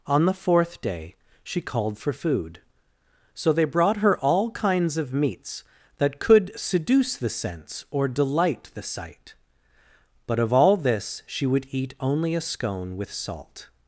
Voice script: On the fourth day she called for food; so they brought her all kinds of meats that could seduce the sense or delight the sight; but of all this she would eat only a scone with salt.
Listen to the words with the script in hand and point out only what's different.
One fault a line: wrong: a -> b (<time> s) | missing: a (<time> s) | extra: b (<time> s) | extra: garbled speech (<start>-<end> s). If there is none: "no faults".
no faults